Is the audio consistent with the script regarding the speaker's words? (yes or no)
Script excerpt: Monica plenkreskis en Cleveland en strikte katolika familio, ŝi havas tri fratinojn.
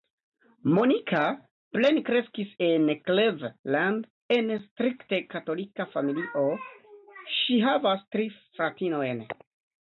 yes